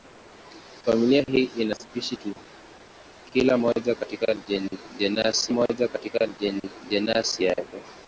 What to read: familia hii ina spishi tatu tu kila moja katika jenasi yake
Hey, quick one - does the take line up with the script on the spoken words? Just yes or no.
no